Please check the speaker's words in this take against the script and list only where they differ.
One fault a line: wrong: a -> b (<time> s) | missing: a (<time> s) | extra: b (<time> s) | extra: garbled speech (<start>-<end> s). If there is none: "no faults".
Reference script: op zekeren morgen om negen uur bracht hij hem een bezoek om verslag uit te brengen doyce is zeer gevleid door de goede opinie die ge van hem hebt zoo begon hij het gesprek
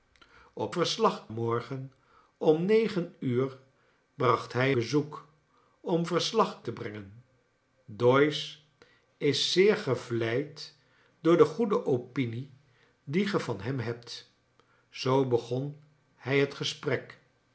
wrong: zekeren -> verslag (0.7 s)
missing: hem een (4.7 s)
missing: uit (6.6 s)